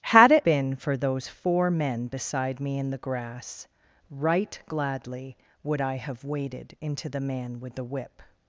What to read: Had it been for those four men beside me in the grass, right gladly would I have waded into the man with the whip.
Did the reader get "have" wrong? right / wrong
right